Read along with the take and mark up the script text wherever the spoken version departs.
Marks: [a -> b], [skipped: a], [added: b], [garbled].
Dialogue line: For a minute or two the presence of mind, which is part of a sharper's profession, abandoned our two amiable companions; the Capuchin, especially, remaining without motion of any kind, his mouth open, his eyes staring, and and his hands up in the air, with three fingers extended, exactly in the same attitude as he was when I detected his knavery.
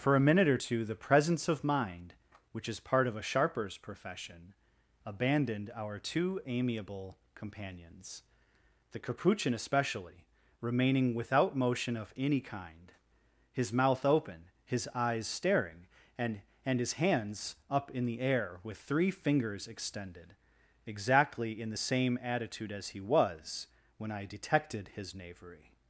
For a minute or two the presence of mind, which is part of a sharper's profession, abandoned our two amiable companions; the Capuchin, especially, remaining without motion of any kind, his mouth open, his eyes staring, and and his hands up in the air, with three fingers extended, exactly in the same attitude as he was when I detected his knavery.